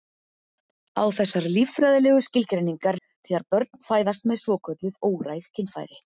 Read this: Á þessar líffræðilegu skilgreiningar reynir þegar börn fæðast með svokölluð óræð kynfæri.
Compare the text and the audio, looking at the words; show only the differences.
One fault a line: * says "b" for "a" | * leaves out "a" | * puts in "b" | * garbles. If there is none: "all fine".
* leaves out "reynir"